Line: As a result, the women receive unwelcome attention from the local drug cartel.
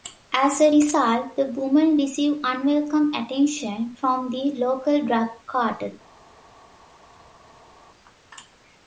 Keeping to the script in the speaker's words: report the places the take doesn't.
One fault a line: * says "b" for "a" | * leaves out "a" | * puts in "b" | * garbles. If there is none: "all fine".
all fine